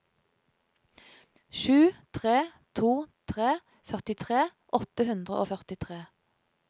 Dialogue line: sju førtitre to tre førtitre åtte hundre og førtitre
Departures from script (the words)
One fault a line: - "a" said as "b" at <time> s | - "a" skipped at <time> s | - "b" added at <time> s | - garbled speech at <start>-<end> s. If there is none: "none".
- "førtitre" said as "tre" at 2.2 s